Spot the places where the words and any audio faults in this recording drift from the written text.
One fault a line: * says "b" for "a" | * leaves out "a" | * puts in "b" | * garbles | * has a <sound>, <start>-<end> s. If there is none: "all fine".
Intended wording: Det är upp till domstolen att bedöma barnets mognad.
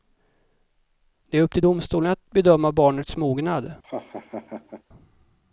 * has a laugh, 3.8-4.8 s